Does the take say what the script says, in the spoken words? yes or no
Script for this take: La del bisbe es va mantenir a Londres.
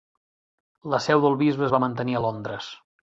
no